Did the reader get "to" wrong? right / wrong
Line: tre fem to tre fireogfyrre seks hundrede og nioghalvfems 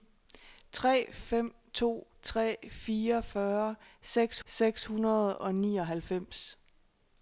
right